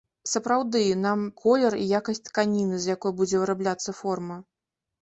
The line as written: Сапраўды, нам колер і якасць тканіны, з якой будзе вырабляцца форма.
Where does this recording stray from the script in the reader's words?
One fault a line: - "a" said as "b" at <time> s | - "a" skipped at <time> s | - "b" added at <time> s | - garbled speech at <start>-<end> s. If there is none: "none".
none